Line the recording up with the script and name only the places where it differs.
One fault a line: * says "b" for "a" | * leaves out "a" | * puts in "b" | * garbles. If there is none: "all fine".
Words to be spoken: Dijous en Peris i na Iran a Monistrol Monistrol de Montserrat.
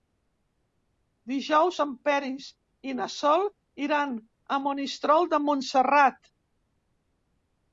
* puts in "Sol"
* leaves out "Monistrol"